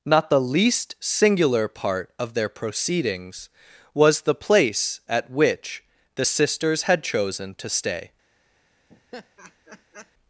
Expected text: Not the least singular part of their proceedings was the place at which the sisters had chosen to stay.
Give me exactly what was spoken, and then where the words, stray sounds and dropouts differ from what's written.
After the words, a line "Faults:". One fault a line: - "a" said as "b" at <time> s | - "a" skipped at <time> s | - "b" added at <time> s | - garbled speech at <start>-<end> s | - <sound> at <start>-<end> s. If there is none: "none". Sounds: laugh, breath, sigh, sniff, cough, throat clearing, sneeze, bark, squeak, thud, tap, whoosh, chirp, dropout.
Not the least singular part of their proceedings was the place at which the sisters had chosen to stay.
Faults:
- laugh at 8.9-10.1 s